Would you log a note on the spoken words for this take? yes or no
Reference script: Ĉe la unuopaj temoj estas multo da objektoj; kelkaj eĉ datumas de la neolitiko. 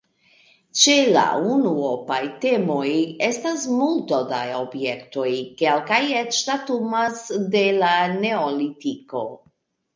no